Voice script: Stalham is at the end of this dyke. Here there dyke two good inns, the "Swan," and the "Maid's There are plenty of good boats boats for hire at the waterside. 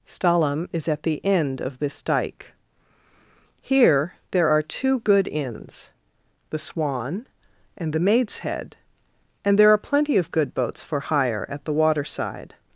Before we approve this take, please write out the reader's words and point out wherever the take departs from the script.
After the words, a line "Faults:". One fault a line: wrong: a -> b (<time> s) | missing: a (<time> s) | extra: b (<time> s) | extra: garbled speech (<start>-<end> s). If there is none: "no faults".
Stalham is at the end of this dyke. Here there are two good inns, the "Swan," and the "Maid's Head," and there are plenty of good boats for hire at the waterside.
Faults:
wrong: dyke -> are (4.5 s)
extra: Head and (8.4 s)
missing: boats (10.8 s)